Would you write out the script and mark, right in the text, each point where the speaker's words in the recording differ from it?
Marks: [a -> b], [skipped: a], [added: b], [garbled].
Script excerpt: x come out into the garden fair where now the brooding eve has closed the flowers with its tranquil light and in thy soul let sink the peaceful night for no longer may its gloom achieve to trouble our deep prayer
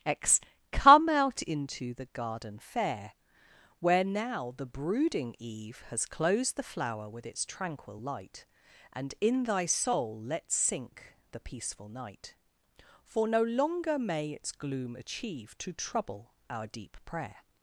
x come out into the garden fair where now the brooding eve has closed the [flowers -> flower] with its tranquil light and in thy soul let sink the peaceful night for no longer may its gloom achieve to trouble our deep prayer